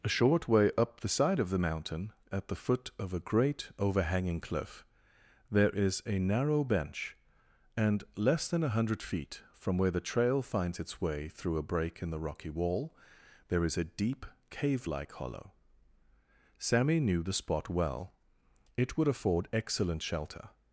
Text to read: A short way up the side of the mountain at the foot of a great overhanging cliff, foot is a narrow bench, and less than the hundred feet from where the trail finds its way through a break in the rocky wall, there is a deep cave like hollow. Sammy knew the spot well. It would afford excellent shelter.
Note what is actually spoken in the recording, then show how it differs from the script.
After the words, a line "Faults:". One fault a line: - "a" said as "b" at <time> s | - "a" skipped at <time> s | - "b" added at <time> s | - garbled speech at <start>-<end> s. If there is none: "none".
A short way up the side of the mountain at the foot of a great overhanging cliff, there is a narrow bench, and less than a hundred feet from where the trail finds its way through a break in the rocky wall, there is a deep cave like hollow. Sammy knew the spot well. It would afford excellent shelter.
Faults:
- "foot" said as "there" at 5.5 s
- "the" said as "a" at 8.6 s